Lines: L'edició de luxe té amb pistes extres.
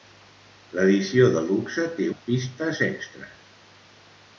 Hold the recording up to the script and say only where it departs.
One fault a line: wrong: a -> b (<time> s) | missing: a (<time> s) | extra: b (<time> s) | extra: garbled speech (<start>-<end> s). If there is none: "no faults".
no faults